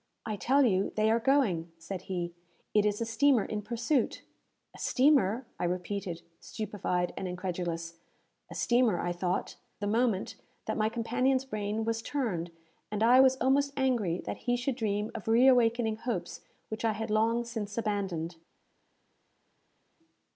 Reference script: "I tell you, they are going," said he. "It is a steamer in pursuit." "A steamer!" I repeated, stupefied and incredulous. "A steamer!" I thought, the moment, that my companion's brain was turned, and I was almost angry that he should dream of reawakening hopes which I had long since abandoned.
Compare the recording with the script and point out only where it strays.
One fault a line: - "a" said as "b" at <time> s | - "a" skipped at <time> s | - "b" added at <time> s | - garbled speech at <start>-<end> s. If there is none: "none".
none